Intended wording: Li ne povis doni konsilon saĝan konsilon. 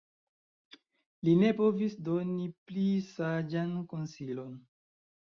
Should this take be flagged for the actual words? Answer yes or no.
yes